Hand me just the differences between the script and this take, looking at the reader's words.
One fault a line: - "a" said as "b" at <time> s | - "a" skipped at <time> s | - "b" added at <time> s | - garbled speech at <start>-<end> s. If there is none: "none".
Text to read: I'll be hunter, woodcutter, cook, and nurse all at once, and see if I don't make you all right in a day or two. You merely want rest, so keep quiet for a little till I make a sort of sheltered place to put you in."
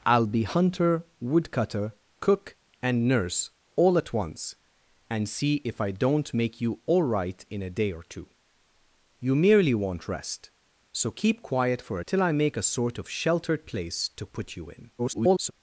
- "little" skipped at 12.0 s
- garbled speech at 15.0-15.5 s